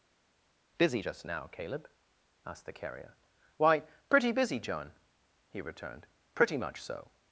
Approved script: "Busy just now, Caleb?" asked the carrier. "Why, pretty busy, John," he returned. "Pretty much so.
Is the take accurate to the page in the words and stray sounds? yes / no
yes